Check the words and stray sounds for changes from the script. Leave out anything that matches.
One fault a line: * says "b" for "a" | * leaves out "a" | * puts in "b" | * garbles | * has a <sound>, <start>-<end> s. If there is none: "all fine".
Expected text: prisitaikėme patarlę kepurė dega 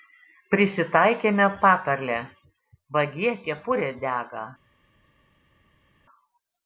* puts in "vagie"